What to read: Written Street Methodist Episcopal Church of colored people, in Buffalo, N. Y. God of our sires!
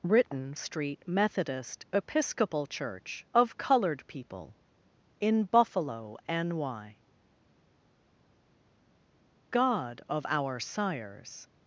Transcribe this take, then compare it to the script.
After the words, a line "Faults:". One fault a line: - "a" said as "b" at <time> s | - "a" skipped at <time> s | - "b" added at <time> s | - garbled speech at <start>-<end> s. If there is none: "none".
Written Street Methodist Episcopal Church of colored people, in Buffalo, N. Y. God of our sires!
Faults:
none